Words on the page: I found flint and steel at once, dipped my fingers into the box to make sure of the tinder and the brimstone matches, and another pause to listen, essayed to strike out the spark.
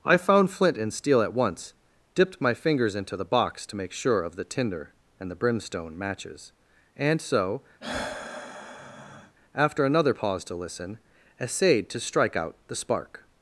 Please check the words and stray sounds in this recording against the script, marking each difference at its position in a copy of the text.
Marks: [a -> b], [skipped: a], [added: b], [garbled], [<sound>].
I found flint and steel at once, dipped my fingers into the box to make sure of the tinder and the brimstone matches, and [added: so after] [sigh] another pause to listen, essayed to strike out the spark.